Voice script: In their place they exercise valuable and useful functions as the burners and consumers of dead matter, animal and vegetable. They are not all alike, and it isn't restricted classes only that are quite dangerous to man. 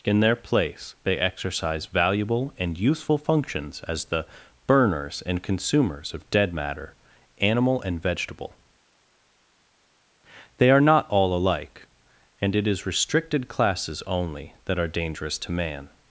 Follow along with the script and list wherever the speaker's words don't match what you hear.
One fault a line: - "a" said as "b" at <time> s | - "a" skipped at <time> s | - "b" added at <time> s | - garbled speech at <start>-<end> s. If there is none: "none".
- "isn't" said as "is" at 12.7 s
- "quite" skipped at 14.9 s